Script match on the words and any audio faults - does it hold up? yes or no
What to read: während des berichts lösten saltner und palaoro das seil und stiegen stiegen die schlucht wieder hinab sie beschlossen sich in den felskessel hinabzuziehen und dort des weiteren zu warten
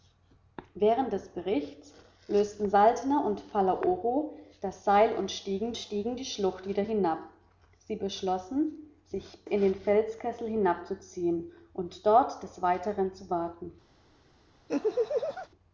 no